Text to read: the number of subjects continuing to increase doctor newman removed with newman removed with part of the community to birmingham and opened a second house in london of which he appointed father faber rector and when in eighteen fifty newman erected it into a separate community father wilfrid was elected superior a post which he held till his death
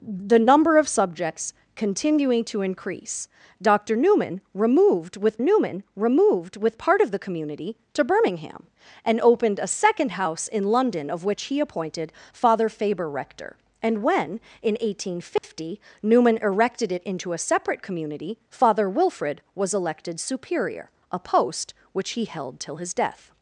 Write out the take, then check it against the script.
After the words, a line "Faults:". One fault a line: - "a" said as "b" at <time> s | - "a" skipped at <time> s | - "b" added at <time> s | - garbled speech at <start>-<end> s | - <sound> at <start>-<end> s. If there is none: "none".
the number of subjects continuing to increase doctor newman removed with newman removed with part of the community to birmingham and opened a second house in london of which he appointed father faber rector and when in eighteen fifty newman erected it into a separate community father wilfrid was elected superior a post which he held till his death
Faults:
- dropout at 15.4-15.4 s